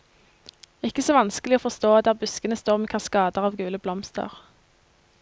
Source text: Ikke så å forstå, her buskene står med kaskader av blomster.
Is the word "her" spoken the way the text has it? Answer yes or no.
no